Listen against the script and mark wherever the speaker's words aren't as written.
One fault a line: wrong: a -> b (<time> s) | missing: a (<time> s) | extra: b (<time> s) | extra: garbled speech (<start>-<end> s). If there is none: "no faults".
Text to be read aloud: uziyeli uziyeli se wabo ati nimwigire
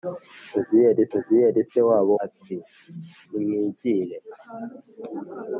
no faults